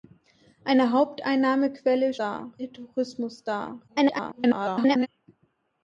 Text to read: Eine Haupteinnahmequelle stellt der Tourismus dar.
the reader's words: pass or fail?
fail